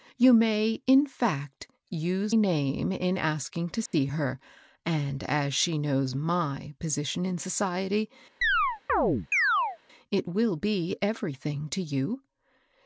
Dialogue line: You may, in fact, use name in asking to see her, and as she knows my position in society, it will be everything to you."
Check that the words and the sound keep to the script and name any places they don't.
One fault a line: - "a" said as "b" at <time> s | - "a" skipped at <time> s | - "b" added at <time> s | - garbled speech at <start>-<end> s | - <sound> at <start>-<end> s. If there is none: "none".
- dropout at 3.9-3.9 s
- chirp at 8.4-9.8 s